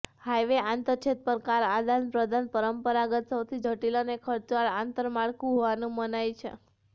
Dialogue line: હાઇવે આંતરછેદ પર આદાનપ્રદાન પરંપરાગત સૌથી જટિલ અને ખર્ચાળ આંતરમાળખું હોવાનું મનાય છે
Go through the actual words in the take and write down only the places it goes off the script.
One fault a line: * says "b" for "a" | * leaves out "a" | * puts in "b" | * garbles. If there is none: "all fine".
* puts in "કાર"